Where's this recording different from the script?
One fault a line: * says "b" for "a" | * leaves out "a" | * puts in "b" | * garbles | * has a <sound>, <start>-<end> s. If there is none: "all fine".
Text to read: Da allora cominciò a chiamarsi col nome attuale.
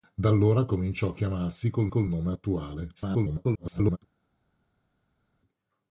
* puts in "col"
* garbles